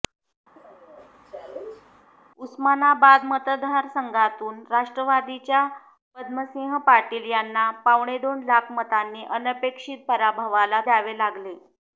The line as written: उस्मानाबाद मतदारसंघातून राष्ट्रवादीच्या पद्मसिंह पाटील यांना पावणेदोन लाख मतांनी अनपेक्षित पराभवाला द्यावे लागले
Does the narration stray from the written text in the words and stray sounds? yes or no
yes